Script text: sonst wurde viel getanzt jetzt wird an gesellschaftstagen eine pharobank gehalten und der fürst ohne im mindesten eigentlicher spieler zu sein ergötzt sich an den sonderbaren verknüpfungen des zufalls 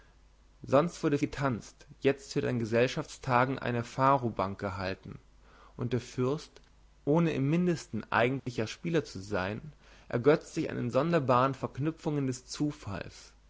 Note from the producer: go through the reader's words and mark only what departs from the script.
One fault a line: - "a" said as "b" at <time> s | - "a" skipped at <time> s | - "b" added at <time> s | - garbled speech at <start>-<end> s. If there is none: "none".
- "viel" skipped at 1.2 s